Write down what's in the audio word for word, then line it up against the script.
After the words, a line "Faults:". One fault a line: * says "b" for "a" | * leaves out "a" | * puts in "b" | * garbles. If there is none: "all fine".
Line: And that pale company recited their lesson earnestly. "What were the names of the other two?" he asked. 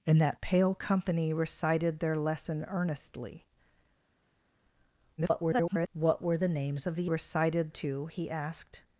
And that pale company recited their lesson earnestly. [garbled] "What were the names of the recited two?" he asked.
Faults:
* garbles
* says "recited" for "other"